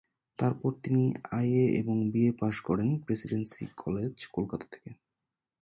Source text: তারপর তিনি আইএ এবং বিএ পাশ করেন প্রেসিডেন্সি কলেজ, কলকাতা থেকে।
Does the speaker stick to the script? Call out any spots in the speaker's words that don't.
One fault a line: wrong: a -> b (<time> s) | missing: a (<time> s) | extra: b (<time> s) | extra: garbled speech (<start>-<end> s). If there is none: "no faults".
no faults